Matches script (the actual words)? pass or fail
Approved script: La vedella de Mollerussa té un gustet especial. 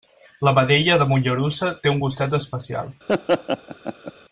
pass